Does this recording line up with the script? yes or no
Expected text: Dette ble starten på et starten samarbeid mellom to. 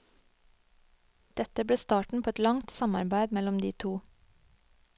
no